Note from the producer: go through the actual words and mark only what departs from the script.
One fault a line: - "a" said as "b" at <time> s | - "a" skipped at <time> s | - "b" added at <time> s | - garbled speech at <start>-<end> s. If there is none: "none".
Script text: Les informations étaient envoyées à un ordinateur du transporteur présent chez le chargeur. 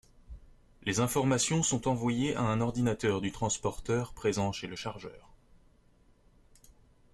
- "étaient" said as "sont" at 1.6 s